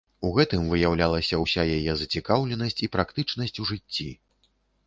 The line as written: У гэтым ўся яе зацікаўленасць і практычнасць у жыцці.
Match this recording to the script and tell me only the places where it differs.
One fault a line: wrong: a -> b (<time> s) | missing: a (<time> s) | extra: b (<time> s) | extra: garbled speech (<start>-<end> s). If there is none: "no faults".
extra: выяўлялася (0.7 s)